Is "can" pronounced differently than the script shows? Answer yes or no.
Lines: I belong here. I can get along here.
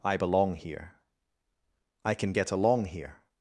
no